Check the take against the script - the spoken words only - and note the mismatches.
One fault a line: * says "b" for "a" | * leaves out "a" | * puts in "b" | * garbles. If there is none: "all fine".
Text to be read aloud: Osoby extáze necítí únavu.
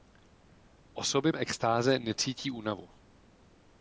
all fine